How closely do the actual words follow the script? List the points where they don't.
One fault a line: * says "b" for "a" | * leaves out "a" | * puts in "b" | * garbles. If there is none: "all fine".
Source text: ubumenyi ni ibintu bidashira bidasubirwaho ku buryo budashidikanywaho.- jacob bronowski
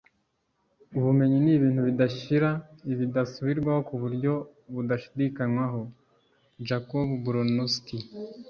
all fine